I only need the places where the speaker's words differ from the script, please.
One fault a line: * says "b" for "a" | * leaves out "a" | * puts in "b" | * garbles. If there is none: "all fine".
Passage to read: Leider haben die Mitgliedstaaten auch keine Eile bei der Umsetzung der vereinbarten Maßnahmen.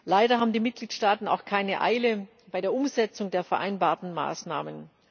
all fine